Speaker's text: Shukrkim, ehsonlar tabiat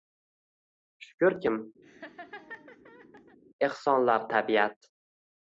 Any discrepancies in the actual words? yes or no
no